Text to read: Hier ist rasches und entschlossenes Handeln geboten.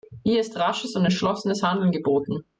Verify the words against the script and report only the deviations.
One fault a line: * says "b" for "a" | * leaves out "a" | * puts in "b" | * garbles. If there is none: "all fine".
all fine